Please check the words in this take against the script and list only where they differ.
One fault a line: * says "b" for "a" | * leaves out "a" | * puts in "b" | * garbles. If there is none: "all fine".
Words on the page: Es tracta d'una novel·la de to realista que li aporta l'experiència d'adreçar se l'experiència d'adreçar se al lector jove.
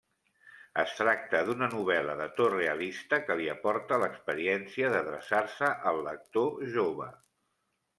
* leaves out "l'experiència d'adreçar se"